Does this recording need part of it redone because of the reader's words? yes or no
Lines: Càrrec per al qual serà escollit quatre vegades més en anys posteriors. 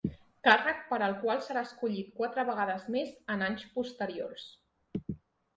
no